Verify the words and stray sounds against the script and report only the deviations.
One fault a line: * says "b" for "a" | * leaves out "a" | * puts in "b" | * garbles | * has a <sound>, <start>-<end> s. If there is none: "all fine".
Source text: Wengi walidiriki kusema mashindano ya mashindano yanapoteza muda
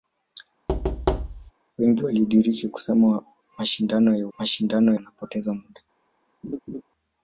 * has a thud, 0.7-1.5 s
* has a laugh, 6.4-6.8 s